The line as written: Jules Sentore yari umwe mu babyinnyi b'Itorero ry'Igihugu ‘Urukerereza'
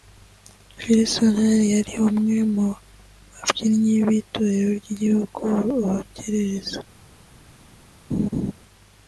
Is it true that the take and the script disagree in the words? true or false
false